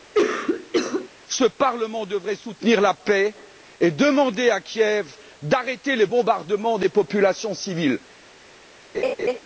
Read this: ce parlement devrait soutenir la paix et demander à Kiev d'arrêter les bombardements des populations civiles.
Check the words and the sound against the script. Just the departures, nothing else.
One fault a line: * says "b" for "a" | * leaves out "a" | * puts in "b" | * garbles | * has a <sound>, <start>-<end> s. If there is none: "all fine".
* has a cough, 0.1-1.1 s
* has a laugh, 8.9-9.4 s